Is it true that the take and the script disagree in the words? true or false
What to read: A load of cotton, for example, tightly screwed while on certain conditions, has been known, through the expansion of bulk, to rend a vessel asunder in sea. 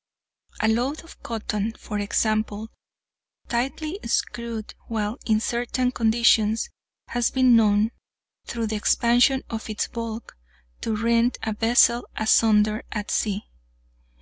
true